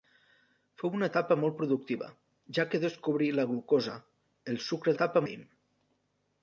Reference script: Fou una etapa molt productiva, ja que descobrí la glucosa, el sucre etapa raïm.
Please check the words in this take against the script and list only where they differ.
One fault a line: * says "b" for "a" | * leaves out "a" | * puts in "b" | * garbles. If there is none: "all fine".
all fine